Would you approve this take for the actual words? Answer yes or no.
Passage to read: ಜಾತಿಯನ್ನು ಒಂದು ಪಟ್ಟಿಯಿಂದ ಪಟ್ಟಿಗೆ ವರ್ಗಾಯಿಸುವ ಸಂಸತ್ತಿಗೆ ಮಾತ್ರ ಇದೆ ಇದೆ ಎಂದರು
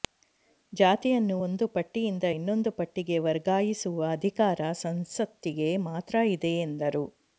no